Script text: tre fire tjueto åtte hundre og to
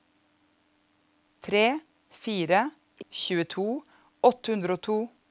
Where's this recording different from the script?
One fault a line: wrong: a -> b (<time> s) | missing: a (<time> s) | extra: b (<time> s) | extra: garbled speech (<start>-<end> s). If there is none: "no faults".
no faults